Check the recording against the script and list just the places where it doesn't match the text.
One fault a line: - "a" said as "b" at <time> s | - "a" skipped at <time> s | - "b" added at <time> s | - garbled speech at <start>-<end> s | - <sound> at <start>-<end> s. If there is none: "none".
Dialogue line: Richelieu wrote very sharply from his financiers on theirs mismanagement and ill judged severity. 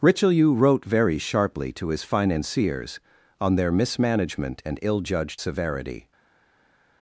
- "from" said as "to" at 1.7 s
- "theirs" said as "their" at 3.5 s